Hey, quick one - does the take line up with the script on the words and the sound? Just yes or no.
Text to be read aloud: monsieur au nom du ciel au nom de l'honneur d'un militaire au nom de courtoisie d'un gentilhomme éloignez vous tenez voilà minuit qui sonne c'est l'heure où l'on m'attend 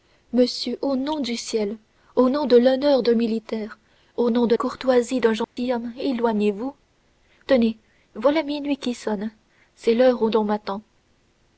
no